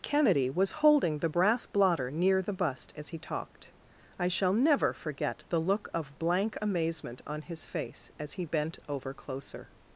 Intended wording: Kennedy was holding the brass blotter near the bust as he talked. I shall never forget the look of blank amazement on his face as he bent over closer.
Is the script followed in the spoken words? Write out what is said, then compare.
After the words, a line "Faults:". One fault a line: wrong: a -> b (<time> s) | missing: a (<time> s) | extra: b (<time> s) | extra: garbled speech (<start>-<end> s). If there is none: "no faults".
Kennedy was holding the brass blotter near the bust as he talked. I shall never forget the look of blank amazement on his face as he bent over closer.
Faults:
no faults